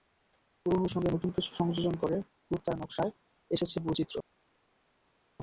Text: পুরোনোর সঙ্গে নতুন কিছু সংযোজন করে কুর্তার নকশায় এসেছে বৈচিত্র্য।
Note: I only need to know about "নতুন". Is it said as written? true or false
true